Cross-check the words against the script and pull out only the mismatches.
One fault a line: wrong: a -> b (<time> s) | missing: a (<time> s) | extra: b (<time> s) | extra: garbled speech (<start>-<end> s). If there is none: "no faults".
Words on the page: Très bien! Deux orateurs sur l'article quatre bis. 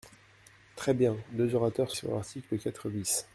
no faults